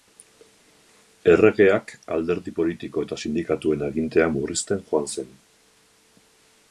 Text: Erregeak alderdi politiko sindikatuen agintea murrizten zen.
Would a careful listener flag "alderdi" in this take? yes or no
no